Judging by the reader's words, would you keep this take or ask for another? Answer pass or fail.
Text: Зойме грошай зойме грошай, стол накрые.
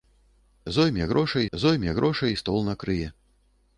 pass